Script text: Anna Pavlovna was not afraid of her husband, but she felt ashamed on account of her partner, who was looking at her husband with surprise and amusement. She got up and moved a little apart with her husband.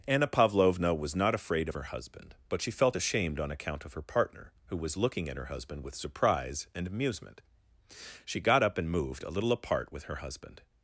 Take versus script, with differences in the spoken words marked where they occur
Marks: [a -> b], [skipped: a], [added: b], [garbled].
Anna Pavlovna was not afraid of her husband, but she felt ashamed on account of her partner, who was looking at her husband with surprise and amusement. She got up and moved a little apart with her husband.